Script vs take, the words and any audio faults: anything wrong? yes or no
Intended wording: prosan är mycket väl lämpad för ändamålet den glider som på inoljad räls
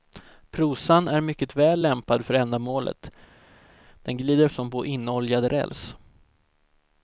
no